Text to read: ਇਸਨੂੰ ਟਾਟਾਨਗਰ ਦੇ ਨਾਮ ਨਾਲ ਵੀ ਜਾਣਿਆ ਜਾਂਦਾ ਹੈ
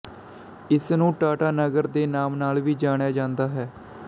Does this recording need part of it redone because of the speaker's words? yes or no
no